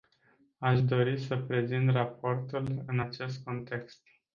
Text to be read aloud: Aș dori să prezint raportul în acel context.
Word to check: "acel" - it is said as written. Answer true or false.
false